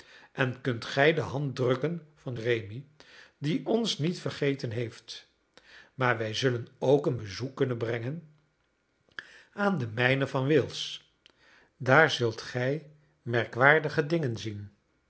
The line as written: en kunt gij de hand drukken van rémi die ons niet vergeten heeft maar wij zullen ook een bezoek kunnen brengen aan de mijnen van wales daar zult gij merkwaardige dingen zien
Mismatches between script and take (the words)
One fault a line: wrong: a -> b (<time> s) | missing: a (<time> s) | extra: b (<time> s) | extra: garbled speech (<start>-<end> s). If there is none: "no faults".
no faults